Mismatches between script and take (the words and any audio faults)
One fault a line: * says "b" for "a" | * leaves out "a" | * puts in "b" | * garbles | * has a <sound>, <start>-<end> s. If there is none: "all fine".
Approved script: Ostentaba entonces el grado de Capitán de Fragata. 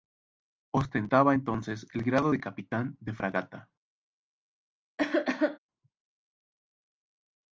* has a cough, 5.0-5.6 s